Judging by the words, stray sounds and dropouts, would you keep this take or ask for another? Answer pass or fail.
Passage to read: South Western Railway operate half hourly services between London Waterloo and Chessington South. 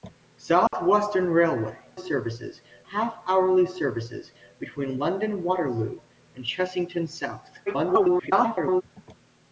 fail